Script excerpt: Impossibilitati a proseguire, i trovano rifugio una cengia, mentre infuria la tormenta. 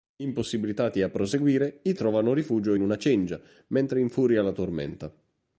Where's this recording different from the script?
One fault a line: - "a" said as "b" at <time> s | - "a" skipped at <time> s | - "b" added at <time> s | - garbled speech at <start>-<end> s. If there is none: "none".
none